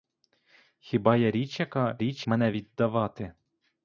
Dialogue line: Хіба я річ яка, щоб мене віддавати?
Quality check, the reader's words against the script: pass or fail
fail